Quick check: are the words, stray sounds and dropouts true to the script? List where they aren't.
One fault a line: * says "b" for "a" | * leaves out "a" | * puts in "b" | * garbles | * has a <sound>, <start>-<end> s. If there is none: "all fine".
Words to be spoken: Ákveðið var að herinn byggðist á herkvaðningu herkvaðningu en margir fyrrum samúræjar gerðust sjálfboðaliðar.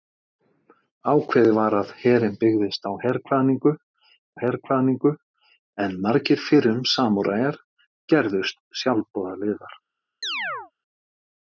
* has a chirp, 10.2-10.7 s